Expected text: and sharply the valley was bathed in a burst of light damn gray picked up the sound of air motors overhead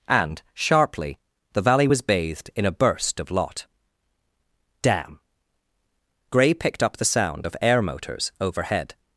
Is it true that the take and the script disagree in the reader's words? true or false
true